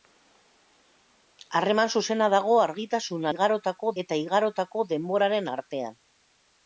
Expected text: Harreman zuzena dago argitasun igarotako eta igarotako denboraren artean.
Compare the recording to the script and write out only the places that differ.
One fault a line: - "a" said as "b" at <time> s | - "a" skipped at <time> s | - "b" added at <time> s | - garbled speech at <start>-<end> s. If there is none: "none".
none